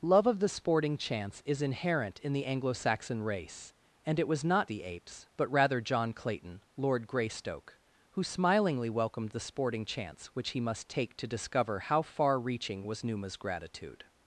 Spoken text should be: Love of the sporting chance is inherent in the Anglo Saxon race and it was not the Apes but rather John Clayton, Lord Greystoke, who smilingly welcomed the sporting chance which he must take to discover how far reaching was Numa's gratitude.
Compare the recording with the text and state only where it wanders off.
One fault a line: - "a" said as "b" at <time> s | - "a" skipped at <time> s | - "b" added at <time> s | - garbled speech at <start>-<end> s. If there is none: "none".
none